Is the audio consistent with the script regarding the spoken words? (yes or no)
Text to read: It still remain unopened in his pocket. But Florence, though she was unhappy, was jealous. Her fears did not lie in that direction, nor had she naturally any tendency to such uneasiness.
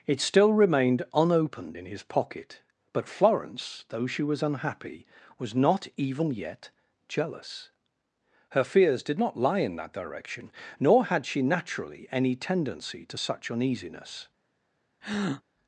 no